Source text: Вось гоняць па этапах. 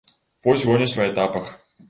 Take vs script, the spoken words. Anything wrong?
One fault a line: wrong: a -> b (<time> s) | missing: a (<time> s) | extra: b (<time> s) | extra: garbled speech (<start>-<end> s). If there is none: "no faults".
no faults